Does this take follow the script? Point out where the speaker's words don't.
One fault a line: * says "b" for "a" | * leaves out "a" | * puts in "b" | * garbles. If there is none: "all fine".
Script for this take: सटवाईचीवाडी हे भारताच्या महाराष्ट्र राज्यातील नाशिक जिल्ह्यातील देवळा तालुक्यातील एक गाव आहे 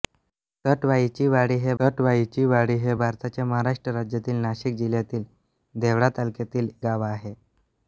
* puts in "सटवाईचीवाडी हे"
* leaves out "एक"